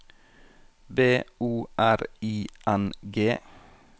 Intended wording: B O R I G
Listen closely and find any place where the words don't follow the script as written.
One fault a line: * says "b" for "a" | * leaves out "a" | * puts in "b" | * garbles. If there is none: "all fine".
* puts in "N"